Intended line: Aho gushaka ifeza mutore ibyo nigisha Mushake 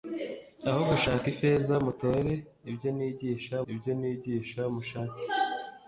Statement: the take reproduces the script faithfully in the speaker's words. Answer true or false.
false